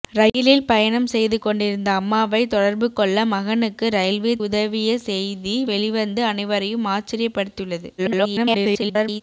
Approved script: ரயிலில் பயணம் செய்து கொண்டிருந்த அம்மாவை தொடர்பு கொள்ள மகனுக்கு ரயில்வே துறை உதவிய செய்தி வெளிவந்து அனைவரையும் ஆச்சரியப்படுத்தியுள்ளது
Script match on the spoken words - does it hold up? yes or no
no